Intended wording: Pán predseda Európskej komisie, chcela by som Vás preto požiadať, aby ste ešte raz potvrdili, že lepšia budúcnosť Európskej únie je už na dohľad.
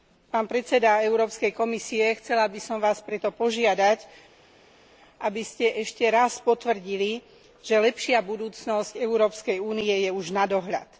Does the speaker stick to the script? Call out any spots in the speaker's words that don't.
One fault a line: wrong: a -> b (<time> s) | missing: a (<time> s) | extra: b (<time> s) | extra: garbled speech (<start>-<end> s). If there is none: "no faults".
no faults